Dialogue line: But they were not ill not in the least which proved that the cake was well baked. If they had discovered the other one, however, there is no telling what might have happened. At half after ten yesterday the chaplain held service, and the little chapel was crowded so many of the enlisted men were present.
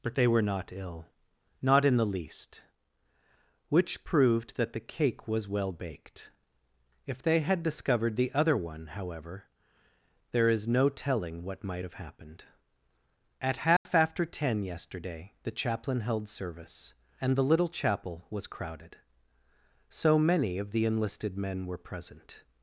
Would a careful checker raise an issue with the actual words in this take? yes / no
no